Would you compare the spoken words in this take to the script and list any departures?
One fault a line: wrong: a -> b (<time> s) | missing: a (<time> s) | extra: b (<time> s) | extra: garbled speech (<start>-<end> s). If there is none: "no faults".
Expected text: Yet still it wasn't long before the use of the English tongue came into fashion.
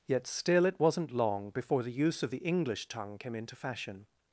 no faults